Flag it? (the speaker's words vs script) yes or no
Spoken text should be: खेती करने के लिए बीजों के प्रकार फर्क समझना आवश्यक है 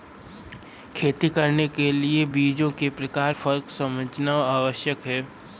no